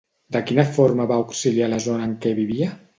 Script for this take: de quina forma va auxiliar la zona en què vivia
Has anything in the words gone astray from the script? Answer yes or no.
no